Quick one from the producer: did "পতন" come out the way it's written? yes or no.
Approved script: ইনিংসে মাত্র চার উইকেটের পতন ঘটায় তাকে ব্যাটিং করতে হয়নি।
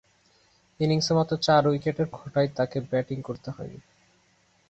no